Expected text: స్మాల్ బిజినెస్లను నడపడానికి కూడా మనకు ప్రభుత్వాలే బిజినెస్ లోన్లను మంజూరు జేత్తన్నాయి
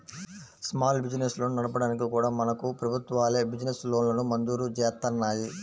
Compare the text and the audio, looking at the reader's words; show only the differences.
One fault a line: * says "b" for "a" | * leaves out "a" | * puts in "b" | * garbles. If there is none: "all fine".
all fine